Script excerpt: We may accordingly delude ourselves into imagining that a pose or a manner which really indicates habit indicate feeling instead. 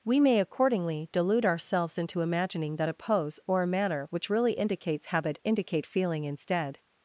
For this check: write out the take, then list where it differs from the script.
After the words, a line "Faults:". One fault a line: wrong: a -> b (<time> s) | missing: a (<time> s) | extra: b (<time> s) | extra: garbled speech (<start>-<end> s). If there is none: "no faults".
We may accordingly delude ourselves into imagining that a pose or a manner which really indicates habit indicate feeling instead.
Faults:
no faults